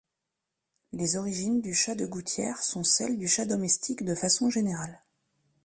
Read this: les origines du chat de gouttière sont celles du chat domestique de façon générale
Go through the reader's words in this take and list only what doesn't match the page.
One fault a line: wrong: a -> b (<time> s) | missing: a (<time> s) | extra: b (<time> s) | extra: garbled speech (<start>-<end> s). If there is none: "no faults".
no faults